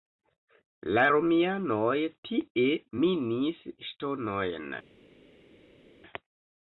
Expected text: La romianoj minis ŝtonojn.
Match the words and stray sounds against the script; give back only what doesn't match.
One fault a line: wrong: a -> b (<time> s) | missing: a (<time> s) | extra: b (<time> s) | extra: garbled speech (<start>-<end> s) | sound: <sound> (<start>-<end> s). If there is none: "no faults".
extra: tie (2.3 s)